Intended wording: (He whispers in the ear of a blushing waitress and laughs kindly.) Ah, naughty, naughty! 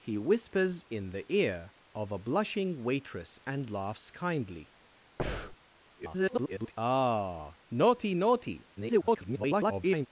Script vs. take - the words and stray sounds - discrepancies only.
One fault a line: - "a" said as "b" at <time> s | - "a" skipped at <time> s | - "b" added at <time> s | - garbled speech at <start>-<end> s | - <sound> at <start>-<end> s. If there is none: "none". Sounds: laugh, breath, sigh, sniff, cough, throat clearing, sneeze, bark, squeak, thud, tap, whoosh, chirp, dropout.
- breath at 5.2-5.6 s
- garbled speech at 6.0-6.7 s
- garbled speech at 8.8-10.1 s